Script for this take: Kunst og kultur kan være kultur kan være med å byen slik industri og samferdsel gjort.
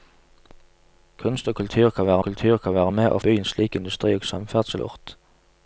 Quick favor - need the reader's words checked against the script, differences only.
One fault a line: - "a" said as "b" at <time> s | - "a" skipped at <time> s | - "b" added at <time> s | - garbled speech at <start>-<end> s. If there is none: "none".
none